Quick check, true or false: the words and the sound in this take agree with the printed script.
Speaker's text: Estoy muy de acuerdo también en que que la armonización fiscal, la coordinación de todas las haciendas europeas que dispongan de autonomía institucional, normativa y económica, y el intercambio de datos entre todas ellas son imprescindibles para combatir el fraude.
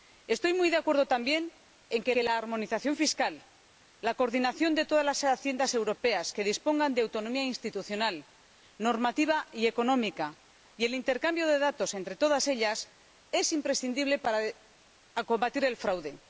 true